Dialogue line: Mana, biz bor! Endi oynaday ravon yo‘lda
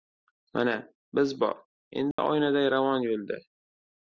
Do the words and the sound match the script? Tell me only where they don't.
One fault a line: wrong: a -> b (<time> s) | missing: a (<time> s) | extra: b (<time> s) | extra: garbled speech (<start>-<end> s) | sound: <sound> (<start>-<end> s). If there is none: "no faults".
sound: dropout (2.1-2.2 s)